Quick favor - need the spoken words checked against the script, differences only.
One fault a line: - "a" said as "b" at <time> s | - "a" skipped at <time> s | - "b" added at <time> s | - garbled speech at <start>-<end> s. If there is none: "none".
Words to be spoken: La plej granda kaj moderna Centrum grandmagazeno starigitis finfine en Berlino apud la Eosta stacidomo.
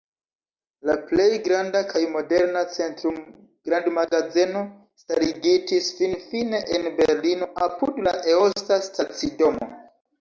none